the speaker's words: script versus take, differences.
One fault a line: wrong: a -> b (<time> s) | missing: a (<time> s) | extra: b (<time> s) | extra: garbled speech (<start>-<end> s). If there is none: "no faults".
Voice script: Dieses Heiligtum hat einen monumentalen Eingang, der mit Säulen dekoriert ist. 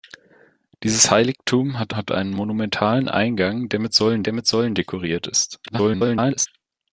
extra: hat (1.9 s)
extra: der mit Säulen (4.2 s)
extra: garbled speech (5.7-6.5 s)